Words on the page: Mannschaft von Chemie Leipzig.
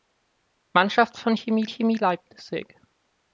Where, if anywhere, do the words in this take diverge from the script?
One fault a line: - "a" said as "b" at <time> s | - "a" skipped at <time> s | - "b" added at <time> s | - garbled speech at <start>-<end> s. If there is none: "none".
- "Chemie" added at 1.7 s